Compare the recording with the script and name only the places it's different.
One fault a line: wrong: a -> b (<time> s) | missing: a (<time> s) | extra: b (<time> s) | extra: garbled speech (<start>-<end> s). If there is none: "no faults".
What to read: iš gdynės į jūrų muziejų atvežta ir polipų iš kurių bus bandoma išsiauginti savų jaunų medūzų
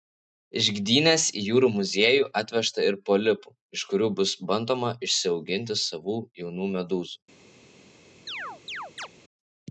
no faults